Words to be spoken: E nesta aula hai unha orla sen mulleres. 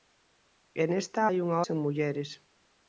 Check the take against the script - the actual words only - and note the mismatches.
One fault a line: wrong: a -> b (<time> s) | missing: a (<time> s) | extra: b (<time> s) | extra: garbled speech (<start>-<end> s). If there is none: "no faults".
missing: aula (1.2 s)
missing: orla (1.6 s)